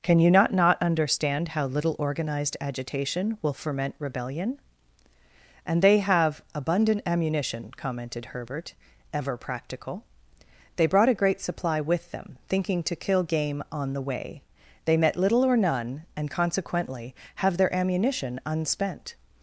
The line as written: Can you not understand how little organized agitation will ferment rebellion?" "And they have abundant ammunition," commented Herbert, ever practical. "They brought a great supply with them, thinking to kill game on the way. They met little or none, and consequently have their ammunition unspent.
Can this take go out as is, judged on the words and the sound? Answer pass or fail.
fail